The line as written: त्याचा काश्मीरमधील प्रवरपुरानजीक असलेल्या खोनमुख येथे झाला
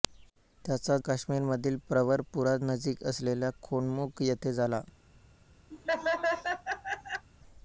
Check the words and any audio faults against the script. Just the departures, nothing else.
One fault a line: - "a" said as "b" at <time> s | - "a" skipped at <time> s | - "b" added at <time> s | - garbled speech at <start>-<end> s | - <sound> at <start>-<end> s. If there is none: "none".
- laugh at 5.7-7.3 s